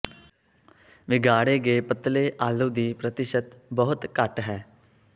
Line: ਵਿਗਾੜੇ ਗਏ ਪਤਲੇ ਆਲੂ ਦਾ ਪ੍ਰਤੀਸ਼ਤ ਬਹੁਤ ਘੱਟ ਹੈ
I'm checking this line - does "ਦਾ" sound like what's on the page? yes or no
no